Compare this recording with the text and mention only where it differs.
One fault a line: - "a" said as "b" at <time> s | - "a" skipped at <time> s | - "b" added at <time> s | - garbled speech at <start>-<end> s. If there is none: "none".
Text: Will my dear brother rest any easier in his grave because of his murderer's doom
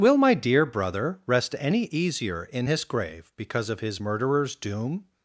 none